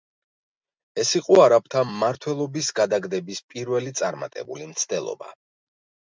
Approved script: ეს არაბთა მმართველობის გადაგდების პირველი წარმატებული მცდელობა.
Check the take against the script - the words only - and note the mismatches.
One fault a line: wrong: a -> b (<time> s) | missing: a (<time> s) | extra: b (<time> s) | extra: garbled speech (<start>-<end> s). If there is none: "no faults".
extra: იყო (1.2 s)